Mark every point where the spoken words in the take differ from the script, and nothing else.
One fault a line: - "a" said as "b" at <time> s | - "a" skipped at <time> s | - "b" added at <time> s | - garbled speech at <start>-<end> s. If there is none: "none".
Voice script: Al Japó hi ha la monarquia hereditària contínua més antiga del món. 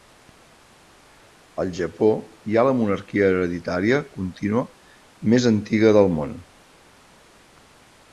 none